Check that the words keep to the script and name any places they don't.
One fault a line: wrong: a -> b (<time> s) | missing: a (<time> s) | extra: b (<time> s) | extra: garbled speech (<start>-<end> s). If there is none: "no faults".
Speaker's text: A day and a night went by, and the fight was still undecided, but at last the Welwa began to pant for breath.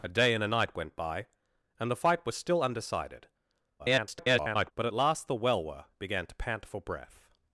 extra: garbled speech (3.8-4.7 s)